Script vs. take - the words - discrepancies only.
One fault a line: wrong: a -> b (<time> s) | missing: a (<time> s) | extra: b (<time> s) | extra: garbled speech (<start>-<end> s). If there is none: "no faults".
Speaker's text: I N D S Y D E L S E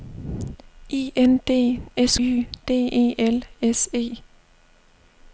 no faults